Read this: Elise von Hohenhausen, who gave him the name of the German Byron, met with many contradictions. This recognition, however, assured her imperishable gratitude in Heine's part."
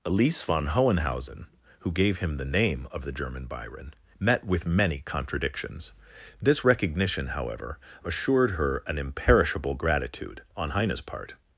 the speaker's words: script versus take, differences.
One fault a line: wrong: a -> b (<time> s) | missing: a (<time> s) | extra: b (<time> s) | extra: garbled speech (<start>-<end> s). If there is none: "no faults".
extra: an (8.9 s)
wrong: in -> on (10.6 s)